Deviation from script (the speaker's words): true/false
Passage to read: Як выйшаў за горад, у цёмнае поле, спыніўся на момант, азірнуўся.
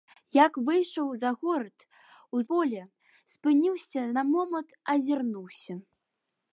true